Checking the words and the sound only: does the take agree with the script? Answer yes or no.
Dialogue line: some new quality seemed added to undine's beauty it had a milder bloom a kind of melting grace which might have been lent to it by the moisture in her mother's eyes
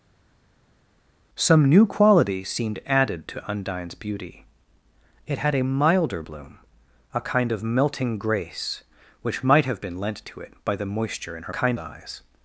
no